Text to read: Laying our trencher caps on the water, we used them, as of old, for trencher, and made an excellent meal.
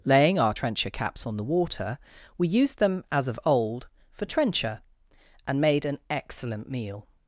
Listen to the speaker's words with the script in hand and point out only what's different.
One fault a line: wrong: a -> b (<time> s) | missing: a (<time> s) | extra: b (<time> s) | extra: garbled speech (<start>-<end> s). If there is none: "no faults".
no faults